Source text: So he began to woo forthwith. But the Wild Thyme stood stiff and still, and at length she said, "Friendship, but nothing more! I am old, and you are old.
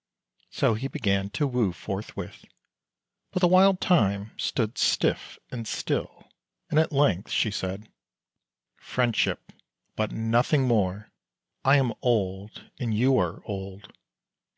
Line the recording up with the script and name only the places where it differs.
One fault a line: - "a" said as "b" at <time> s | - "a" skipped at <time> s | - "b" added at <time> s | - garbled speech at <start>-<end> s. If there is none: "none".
none